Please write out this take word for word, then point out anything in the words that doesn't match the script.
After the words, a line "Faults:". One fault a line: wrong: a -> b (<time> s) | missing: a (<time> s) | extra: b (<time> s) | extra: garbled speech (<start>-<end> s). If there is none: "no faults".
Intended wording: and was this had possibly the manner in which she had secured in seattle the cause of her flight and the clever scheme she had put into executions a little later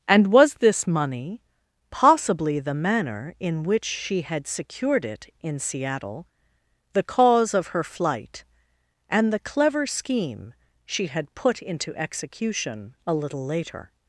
and was this money possibly the manner in which she had secured it in seattle the cause of her flight and the clever scheme she had put into execution a little later
Faults:
wrong: had -> money (0.9 s)
extra: it (5.0 s)
wrong: executions -> execution (12.0 s)